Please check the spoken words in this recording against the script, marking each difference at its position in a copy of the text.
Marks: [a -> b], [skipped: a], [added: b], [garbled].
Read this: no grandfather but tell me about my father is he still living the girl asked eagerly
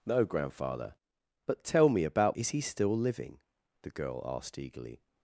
no grandfather but tell me about [skipped: my father] is he still living the girl asked eagerly